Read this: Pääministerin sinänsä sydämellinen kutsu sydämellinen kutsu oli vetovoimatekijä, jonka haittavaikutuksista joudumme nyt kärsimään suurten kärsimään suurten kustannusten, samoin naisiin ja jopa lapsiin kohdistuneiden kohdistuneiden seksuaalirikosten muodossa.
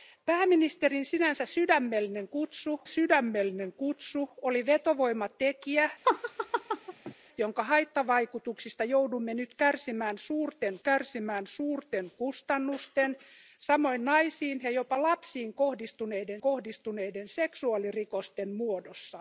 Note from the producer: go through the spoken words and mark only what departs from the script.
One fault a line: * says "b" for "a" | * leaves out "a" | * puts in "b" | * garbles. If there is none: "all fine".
all fine